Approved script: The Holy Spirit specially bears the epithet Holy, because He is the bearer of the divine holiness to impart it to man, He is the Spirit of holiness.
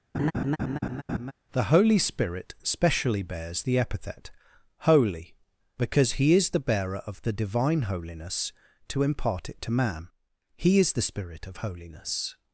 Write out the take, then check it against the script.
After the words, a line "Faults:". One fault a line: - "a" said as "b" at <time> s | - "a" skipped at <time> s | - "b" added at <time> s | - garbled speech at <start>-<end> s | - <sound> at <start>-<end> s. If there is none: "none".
The Holy Spirit specially bears the epithet Holy, because He is the bearer of the divine holiness to impart it to man, He is the Spirit of holiness.
Faults:
- laugh at 0.1-1.3 s